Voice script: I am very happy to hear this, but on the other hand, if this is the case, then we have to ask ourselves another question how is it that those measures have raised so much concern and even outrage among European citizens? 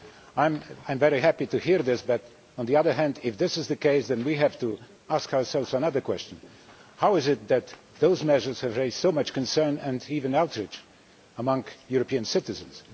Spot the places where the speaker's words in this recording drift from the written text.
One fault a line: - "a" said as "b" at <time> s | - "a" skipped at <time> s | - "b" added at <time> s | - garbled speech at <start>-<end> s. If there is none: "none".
none